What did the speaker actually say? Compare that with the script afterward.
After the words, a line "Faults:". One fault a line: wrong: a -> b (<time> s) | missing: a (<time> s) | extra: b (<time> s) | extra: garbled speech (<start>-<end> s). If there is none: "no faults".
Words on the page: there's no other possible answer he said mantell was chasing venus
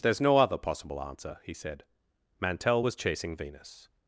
there's no other possible answer he said mantell was chasing venus
Faults:
no faults